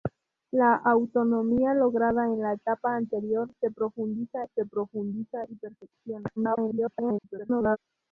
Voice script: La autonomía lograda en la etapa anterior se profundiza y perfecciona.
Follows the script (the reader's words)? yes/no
no